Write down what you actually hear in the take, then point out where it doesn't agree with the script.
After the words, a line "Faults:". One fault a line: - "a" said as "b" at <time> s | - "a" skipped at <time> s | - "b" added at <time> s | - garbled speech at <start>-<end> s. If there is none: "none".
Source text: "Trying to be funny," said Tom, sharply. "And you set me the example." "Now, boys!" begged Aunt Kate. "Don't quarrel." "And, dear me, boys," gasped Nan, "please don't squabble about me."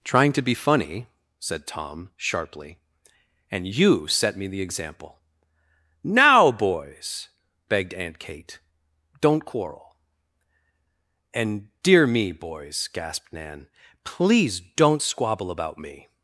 "Trying to be funny," said Tom, sharply. "And you set me the example." "Now, boys!" begged Aunt Kate. "Don't quarrel." "And, dear me, boys," gasped Nan, "please don't squabble about me."
Faults:
none